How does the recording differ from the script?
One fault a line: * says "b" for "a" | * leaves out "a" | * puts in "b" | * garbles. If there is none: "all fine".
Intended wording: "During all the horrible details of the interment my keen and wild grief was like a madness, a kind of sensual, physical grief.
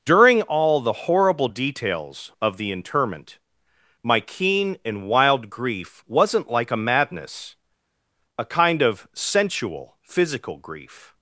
* says "wasn't" for "was"